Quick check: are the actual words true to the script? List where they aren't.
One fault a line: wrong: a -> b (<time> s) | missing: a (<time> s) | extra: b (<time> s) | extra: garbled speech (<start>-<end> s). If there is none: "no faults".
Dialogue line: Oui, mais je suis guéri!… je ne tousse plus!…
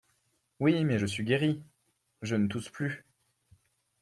no faults